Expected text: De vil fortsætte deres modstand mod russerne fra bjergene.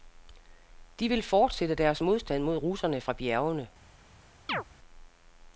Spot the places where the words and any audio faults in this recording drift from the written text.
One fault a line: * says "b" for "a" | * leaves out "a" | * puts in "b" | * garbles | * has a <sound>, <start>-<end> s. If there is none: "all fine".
* has a chirp, 4.5-4.6 s